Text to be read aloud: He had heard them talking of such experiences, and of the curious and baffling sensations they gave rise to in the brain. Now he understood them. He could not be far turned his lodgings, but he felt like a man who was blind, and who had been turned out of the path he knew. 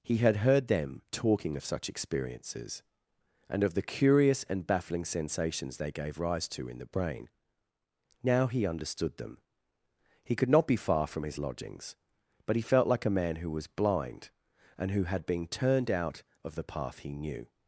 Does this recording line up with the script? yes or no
no